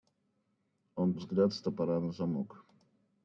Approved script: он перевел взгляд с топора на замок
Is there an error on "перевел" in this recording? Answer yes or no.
yes